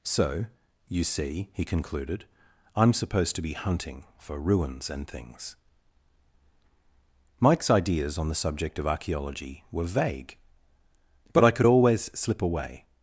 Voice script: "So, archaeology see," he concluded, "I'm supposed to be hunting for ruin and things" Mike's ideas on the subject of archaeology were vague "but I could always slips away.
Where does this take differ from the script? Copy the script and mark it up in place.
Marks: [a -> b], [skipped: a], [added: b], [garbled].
"So, [archaeology -> you] see," he concluded, "I'm supposed to be hunting for [ruin -> ruins] and things" Mike's ideas on the subject of archaeology were vague "but I could always [slips -> slip] away.